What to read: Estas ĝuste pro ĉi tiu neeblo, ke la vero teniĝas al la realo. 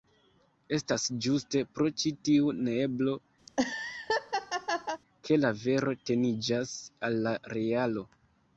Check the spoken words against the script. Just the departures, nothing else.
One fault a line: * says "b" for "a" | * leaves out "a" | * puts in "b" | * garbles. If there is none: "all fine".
all fine